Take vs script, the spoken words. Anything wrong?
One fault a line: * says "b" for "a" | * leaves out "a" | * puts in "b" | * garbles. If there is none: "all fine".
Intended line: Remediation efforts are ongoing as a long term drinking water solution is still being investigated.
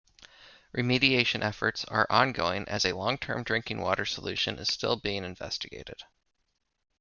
all fine